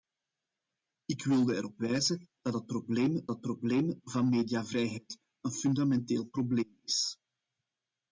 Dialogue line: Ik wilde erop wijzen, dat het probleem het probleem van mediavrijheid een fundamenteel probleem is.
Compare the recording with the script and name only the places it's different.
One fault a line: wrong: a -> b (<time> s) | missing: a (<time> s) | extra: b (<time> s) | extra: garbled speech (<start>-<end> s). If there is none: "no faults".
no faults